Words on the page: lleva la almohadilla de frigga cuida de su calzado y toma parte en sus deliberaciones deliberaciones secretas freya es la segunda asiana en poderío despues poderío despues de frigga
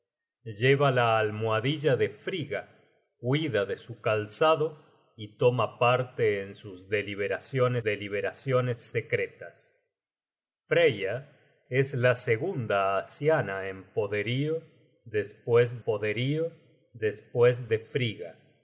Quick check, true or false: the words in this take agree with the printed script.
true